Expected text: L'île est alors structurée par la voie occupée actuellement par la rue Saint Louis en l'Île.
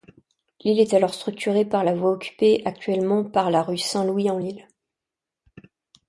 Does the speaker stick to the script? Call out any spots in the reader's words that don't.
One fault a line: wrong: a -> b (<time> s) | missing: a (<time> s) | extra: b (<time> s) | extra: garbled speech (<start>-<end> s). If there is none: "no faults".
no faults